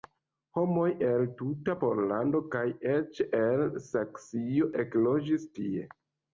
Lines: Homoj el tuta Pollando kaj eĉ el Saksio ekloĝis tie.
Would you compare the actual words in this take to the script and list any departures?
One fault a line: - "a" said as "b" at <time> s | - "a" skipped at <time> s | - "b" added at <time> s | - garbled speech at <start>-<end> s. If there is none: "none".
none